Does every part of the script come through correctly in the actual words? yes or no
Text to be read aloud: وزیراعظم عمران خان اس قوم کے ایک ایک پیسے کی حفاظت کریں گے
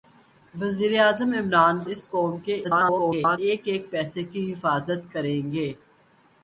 no